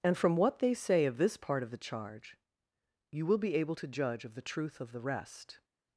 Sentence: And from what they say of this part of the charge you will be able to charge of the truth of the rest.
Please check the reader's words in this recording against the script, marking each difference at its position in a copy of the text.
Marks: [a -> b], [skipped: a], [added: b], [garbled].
And from what they say of this part of the charge you will be able to [charge -> judge] of the truth of the rest.